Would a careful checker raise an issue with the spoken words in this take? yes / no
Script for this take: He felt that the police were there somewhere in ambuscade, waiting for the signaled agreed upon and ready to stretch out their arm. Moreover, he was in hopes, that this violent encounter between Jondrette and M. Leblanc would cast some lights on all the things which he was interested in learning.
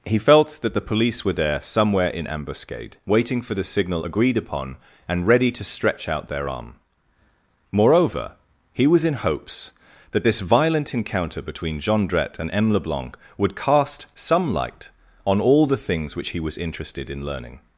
yes